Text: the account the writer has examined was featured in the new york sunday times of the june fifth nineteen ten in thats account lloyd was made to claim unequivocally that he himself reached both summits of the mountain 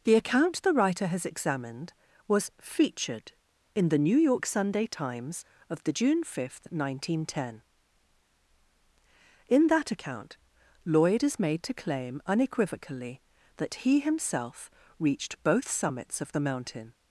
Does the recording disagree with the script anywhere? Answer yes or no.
yes